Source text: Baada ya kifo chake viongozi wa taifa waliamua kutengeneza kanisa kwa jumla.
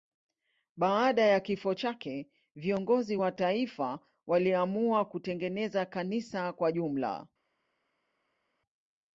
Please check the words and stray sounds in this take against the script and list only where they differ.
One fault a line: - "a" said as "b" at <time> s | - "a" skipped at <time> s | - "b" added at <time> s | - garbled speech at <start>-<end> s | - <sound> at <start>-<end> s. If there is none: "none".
none